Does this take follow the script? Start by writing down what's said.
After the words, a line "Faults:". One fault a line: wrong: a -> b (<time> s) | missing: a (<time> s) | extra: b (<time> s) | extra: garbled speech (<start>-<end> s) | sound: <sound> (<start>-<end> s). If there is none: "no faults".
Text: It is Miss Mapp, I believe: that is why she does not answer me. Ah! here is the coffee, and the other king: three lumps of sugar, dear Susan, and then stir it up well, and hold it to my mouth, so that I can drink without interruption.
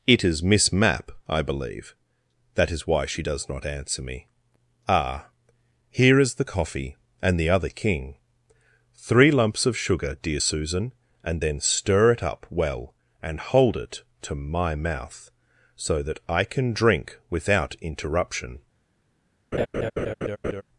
It is Miss Mapp, I believe: that is why she does not answer me. Ah! here is the coffee, and the other king: three lumps of sugar, dear Susan, and then stir it up well, and hold it to my mouth, so that I can drink without interruption.
Faults:
sound: laugh (19.5-20.6 s)